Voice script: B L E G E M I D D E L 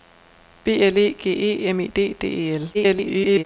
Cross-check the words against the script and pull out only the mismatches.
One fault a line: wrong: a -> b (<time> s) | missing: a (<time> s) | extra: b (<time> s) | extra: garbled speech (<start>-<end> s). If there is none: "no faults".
extra: garbled speech (2.7-3.4 s)